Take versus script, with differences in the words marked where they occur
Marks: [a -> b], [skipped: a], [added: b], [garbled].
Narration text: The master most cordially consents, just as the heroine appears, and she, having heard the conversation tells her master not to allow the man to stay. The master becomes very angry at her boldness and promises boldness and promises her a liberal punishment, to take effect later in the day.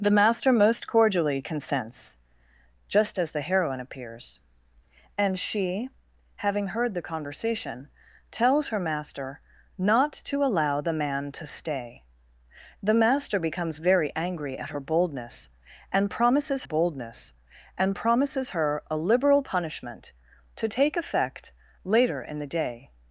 The master most cordially consents, just as the heroine appears, and she, having heard the conversation tells her master not to allow the man to stay. The master becomes very angry at her boldness and promises boldness and promises her a liberal punishment, to take effect later in the day.